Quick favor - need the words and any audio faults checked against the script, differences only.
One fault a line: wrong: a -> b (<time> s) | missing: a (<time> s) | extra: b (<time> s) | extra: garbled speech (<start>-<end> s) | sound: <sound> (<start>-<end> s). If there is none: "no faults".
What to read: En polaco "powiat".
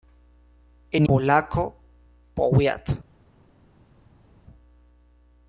no faults